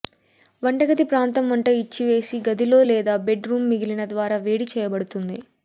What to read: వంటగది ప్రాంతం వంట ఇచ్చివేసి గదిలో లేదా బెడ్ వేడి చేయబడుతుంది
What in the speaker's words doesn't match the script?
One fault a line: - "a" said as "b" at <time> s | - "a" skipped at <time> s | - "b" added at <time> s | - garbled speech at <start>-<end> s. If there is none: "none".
- "రూమ్ మిగిలిన ద్వారా" added at 3.5 s